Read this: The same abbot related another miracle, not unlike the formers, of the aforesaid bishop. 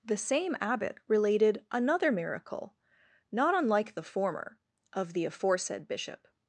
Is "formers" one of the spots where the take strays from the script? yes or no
yes